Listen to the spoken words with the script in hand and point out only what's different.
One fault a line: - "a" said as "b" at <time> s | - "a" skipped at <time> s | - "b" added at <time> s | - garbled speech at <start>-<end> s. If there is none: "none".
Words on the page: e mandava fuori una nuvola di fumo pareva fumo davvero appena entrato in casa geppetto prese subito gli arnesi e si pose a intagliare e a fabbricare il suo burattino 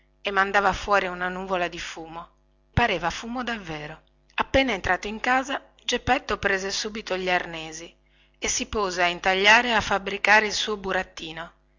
none